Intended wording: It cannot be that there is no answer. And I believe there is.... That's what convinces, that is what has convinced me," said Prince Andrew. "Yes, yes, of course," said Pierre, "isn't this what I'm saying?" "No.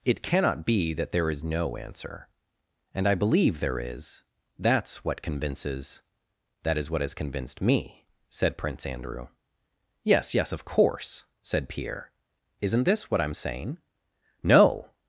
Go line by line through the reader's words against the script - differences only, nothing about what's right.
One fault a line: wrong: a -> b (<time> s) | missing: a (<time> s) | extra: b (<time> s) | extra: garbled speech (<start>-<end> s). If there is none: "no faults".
no faults